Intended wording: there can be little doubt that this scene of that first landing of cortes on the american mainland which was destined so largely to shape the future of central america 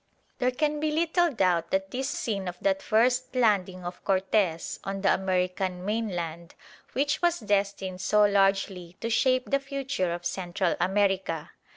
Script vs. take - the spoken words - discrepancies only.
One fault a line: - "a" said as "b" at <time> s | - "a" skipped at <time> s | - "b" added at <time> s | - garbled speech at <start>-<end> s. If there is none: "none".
none